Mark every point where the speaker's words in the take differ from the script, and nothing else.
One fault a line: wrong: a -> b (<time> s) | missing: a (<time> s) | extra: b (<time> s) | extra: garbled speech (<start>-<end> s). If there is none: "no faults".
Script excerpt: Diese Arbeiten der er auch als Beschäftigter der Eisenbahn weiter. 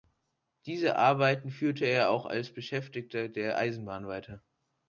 wrong: der -> führte (1.5 s)